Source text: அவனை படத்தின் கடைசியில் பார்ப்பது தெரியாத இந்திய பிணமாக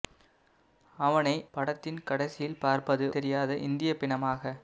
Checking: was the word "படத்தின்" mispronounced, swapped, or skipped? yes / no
no